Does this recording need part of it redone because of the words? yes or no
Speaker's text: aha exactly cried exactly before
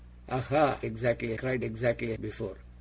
no